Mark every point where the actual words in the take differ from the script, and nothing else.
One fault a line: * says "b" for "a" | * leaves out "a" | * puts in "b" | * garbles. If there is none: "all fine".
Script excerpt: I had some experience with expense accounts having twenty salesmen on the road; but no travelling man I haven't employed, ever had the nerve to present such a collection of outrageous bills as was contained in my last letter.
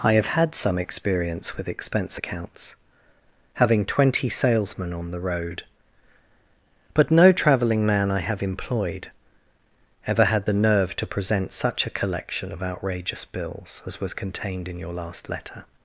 * puts in "have"
* says "have" for "haven't"
* says "your" for "my"